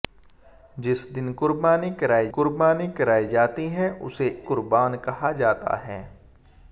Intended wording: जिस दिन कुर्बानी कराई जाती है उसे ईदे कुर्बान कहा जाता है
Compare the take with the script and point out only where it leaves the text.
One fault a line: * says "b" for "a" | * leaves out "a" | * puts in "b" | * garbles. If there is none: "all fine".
* puts in "कुर्बानी कराई"
* leaves out "ईदे"